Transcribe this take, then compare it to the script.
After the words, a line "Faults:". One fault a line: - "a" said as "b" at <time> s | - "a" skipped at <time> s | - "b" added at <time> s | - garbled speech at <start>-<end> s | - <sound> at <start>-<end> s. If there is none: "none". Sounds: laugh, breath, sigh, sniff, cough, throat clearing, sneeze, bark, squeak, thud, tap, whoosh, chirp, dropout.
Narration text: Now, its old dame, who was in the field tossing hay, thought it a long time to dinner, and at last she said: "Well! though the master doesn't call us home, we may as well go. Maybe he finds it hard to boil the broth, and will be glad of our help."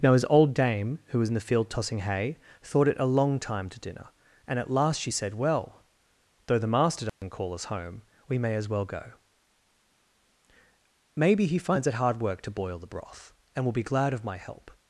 Now, his old dame, who was in the field tossing hay, thought it a long time to dinner, and at last she said: "Well! though the master doesn't call us home, we may as well go. Maybe he finds it hard work to boil the broth, and will be glad of my help."
Faults:
- "its" said as "his" at 0.1 s
- dropout at 7.1-7.2 s
- "work" added at 12.2 s
- "our" said as "my" at 14.2 s